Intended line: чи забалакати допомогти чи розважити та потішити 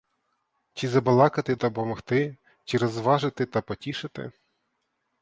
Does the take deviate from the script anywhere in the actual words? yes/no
no